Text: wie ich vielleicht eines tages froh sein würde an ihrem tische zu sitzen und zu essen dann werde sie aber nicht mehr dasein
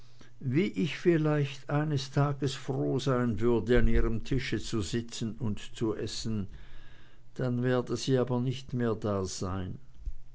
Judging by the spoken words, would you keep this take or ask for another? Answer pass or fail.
pass